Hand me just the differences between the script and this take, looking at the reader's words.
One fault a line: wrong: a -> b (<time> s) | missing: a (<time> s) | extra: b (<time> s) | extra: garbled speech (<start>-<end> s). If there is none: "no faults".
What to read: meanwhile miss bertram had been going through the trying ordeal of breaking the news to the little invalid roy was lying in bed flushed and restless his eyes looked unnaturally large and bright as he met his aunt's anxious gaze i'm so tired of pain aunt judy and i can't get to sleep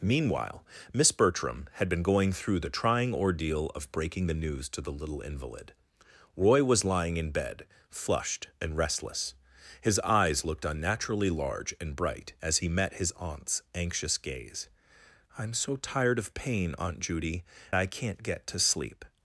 missing: and (17.4 s)